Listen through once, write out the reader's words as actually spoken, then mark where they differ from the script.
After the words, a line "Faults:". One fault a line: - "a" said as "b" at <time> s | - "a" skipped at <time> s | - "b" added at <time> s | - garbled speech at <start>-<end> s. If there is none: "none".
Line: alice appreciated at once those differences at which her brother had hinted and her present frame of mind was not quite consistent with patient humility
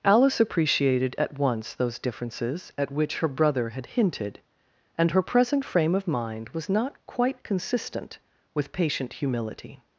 alice appreciated at once those differences at which her brother had hinted and her present frame of mind was not quite consistent with patient humility
Faults:
none